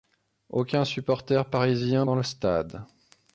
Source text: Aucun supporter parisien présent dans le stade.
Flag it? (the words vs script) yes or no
yes